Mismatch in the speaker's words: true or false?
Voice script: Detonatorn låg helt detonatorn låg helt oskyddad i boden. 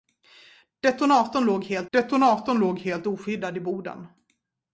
false